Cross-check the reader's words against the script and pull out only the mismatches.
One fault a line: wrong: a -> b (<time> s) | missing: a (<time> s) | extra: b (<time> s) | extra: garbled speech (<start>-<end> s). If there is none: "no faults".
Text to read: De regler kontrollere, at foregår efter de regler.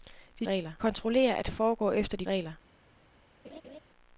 no faults